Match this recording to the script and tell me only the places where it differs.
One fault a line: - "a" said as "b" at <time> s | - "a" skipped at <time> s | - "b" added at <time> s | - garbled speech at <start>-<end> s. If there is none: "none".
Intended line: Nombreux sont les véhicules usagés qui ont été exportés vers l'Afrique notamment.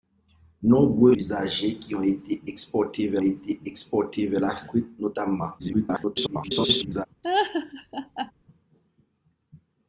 - "sont les véhicules usagés qui ont" said as "usagés qui ont été exportés vers" at 1.1 s
- garbled speech at 5.6-7.1 s